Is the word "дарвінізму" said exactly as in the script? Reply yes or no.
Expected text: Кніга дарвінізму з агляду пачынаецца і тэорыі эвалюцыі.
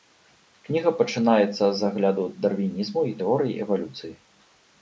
no